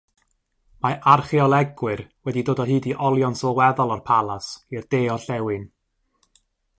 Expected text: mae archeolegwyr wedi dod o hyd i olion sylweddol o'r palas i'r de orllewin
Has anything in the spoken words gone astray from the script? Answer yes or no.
no